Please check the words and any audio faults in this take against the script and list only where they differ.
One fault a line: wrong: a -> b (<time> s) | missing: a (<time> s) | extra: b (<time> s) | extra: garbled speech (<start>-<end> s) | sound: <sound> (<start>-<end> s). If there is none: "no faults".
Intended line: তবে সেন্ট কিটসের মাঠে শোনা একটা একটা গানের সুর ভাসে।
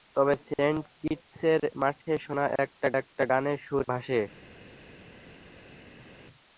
no faults